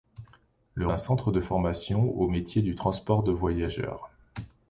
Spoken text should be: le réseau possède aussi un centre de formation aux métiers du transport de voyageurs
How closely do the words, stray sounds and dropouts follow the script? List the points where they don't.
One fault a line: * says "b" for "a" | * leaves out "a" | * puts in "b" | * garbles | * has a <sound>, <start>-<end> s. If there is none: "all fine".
* leaves out "réseau possède aussi"